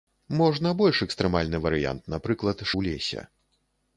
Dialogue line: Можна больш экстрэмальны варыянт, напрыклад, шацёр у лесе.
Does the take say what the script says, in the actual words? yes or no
no